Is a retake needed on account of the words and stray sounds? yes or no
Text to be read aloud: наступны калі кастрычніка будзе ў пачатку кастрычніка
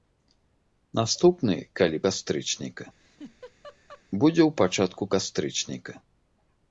yes